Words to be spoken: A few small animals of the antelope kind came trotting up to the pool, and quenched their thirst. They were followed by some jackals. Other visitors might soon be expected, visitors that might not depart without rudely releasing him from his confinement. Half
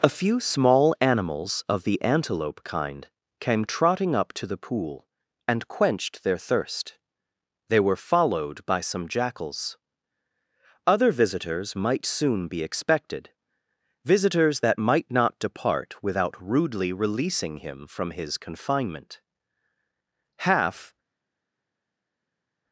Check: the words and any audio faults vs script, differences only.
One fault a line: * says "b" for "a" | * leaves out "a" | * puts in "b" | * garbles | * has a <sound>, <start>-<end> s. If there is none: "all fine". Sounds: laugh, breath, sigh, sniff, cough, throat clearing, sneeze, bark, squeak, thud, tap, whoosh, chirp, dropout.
all fine